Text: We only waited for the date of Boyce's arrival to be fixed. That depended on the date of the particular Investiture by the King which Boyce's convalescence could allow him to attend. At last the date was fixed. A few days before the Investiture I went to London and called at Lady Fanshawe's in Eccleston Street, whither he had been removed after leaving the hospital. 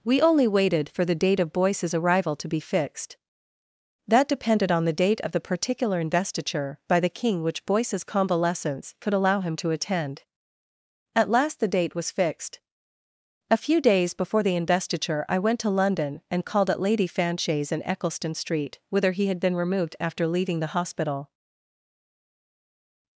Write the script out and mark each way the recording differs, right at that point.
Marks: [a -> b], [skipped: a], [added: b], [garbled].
We only waited for the date of Boyce's arrival to be fixed. That depended on the date of the particular Investiture by the King which Boyce's convalescence could allow him to attend. At last the date was fixed. A few days before the Investiture I went to London and called at Lady Fanshawe's in Eccleston Street, whither he had been removed after leaving the hospital.